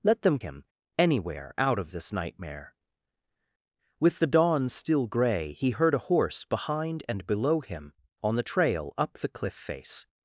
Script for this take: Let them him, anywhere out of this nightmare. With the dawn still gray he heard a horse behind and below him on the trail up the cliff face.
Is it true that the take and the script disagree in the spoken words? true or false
false